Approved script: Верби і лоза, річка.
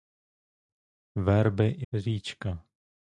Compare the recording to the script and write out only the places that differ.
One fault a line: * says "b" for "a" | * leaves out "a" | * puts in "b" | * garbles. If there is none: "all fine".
* leaves out "лоза"